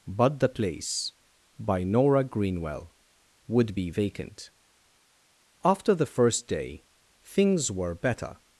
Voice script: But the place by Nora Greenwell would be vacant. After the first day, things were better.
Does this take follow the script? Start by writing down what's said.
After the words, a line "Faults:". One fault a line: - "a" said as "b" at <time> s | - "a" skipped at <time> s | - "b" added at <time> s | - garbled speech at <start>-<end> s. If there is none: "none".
But the place by Nora Greenwell would be vacant. After the first day, things were better.
Faults:
none